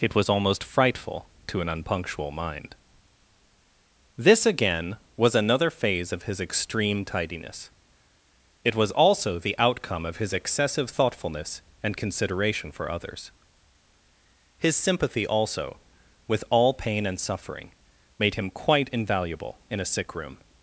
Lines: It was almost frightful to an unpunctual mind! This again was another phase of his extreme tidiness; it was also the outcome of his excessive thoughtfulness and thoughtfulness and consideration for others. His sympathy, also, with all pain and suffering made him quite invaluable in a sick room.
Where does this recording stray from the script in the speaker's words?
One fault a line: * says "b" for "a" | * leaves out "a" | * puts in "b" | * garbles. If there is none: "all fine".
* leaves out "thoughtfulness and"